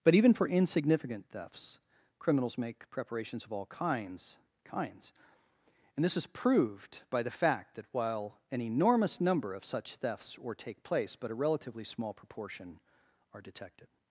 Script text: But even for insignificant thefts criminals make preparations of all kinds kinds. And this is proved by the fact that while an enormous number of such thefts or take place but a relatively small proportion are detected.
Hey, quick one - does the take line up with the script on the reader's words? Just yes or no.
yes